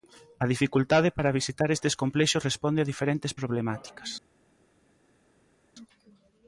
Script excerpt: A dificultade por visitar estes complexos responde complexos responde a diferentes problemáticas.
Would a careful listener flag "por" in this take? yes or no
yes